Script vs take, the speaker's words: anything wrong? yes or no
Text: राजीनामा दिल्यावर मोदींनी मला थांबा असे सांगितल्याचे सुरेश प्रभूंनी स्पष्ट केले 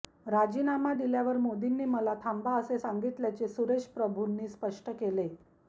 no